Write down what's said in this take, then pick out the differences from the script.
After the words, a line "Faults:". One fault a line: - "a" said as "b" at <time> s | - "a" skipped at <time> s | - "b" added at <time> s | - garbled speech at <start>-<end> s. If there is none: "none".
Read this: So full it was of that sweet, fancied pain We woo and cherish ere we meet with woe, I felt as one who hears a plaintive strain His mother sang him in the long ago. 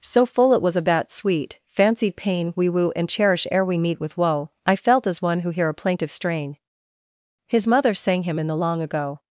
So full it was of that sweet, fancied pain We woo and cherish ere we meet with woe, I felt as one who hear a plaintive strain His mother sang him in the long ago.
Faults:
- "hears" said as "hear" at 5.5 s